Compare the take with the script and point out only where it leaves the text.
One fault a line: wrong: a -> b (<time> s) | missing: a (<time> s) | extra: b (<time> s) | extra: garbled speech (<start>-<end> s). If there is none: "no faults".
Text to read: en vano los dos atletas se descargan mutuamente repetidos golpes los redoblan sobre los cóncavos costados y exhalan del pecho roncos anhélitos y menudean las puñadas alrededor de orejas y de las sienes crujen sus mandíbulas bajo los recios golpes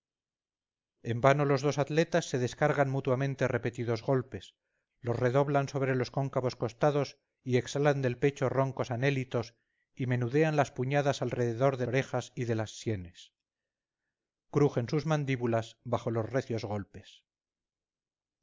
no faults